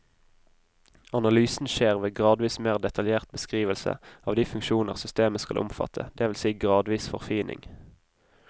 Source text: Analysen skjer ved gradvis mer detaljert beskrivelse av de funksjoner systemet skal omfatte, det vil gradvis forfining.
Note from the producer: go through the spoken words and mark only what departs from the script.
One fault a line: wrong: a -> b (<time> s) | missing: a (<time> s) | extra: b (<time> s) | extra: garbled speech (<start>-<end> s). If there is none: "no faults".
extra: si (6.4 s)